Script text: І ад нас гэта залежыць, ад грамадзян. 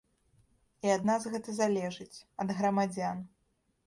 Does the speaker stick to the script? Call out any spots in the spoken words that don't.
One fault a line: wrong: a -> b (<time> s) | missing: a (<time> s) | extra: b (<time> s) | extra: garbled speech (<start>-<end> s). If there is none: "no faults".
no faults